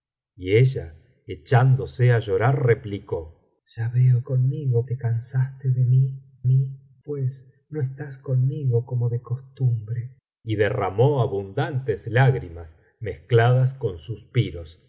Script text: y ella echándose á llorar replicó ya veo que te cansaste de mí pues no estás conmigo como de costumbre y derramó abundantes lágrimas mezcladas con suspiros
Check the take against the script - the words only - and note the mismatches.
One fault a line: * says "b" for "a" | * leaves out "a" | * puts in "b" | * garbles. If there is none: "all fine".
* says "conmigo" for "que"
* puts in "mí"